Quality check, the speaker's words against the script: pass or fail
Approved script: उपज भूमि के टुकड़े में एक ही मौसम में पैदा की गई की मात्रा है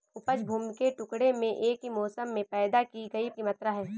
pass